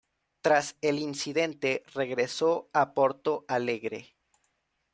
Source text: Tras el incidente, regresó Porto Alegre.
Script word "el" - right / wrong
right